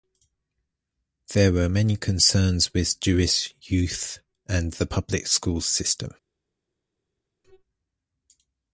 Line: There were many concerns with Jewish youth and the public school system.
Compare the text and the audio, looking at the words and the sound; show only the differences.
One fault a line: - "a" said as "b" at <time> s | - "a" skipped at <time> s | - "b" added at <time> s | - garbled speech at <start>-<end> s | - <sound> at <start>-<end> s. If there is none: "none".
none